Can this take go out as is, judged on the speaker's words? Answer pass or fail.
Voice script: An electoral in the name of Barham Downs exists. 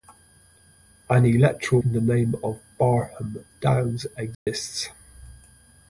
pass